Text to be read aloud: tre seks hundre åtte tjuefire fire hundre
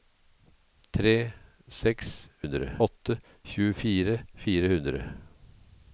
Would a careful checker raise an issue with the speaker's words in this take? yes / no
no